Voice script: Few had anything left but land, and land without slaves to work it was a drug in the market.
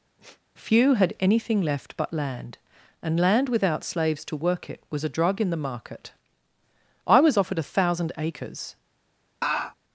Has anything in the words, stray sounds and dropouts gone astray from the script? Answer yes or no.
yes